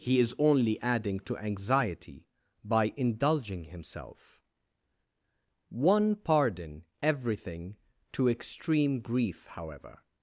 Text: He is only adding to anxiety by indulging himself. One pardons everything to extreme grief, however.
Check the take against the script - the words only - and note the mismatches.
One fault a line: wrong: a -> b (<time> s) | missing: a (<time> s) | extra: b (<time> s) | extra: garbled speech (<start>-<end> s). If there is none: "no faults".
wrong: pardons -> pardon (6.2 s)